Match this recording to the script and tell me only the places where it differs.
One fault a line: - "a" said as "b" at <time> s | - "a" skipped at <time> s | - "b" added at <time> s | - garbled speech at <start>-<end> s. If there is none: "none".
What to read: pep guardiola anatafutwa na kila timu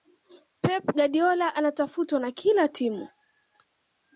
none